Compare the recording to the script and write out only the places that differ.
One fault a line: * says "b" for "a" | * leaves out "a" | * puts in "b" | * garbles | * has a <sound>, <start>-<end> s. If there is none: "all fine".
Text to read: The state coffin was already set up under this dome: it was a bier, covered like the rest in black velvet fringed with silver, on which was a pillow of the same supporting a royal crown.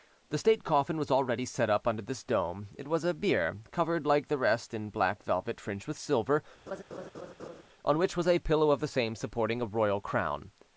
* has a laugh, 6.7-7.6 s